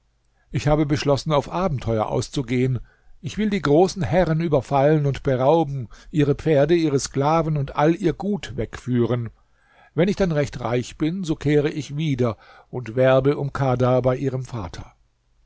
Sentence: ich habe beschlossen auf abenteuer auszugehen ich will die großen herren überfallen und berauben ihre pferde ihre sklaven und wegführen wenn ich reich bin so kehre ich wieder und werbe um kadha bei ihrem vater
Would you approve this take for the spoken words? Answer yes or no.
no